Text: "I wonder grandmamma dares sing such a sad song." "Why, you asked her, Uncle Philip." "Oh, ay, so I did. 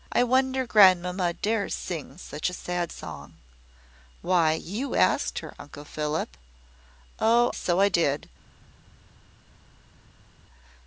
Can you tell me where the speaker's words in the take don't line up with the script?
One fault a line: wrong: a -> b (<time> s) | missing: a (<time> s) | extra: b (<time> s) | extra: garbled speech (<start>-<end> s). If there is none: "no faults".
missing: ay (7.5 s)